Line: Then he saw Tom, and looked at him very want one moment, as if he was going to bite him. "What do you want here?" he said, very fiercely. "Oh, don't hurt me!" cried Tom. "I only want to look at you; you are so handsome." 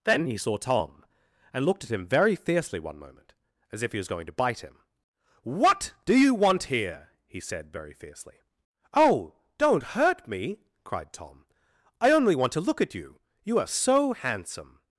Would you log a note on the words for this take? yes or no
yes